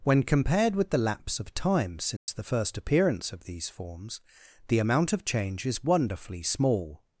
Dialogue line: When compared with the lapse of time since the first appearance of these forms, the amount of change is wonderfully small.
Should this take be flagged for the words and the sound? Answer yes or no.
yes